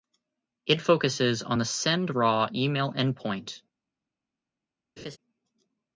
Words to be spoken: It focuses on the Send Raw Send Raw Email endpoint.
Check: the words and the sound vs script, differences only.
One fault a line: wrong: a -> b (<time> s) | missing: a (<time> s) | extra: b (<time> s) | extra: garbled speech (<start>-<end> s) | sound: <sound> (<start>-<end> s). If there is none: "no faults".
missing: Send Raw (2.5 s)
sound: laugh (5.0-5.2 s)